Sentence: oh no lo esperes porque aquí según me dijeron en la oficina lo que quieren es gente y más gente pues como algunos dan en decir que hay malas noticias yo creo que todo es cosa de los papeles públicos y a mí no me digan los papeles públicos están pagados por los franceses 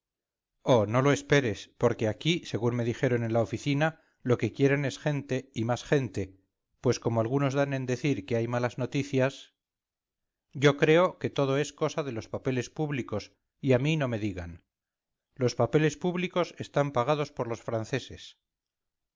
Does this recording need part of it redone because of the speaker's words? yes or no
no